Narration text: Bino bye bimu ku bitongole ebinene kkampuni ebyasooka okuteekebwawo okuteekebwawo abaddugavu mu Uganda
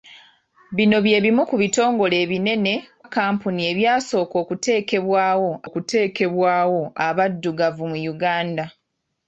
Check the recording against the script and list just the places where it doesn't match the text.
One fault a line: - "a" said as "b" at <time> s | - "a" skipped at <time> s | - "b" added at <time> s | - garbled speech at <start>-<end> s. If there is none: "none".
none